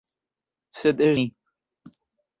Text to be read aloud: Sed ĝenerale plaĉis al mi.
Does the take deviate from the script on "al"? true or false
true